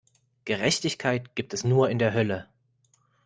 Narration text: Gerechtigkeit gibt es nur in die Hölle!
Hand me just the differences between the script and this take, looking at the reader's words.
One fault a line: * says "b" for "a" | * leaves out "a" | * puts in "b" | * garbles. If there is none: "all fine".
* says "der" for "die"